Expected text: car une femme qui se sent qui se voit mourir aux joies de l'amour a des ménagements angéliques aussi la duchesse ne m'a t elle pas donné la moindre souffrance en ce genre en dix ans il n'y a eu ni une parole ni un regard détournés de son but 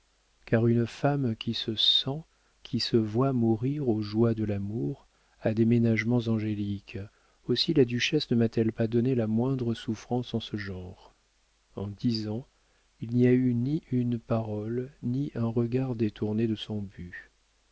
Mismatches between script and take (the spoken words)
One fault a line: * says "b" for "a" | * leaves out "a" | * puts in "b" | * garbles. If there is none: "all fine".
all fine